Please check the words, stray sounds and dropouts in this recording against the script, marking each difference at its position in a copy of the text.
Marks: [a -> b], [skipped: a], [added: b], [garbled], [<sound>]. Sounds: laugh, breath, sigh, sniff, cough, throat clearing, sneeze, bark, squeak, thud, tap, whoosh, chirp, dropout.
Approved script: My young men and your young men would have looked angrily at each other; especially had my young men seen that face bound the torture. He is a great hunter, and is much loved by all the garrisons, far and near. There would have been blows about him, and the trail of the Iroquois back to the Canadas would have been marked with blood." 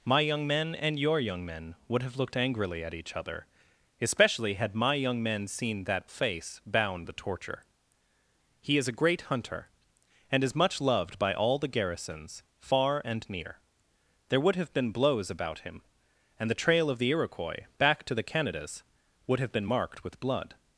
My young men and your young men would have looked angrily at each other; especially had my young men seen that face bound the torture. He is a great hunter, and is much loved by all the garrisons, far and near. There would have been blows about him, and the trail of the Iroquois back to the Canadas would have been marked with blood."